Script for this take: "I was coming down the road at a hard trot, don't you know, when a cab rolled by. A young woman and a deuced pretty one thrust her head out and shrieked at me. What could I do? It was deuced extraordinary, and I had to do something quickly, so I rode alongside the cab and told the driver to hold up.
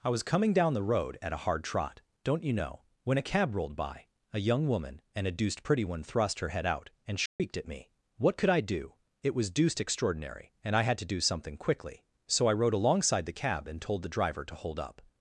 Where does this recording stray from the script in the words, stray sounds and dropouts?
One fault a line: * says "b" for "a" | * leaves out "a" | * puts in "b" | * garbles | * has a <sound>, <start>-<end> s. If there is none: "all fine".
* has a dropout, 7.3-7.4 s